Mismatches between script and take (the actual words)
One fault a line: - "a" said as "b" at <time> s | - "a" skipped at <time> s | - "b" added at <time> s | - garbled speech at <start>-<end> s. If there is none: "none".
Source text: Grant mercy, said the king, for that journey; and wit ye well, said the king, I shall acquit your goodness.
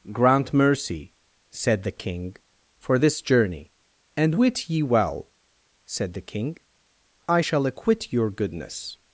- "that" said as "this" at 3.0 s